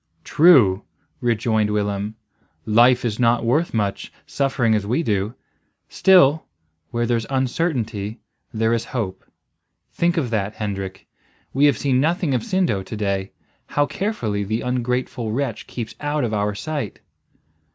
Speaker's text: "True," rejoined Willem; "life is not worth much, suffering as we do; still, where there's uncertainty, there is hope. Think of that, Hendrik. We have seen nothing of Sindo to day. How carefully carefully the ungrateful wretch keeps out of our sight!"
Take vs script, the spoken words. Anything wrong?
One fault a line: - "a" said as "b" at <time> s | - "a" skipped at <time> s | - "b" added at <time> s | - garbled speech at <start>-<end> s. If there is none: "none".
- "carefully" skipped at 14.4 s